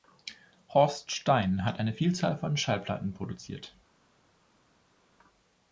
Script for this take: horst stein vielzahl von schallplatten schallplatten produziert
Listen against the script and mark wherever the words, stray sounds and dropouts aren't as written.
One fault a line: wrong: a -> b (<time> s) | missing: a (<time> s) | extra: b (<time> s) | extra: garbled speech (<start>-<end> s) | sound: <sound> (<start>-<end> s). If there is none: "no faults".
extra: hat eine (1.6 s)
missing: schallplatten (3.1 s)